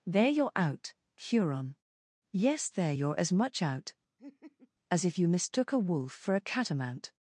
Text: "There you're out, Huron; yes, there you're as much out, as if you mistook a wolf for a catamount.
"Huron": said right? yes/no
yes